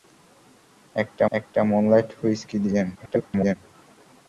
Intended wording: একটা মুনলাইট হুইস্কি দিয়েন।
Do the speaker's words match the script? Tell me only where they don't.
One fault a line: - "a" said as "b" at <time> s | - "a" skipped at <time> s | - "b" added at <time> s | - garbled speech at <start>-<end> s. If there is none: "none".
- "একটা" added at 1.3 s
- garbled speech at 2.9-3.6 s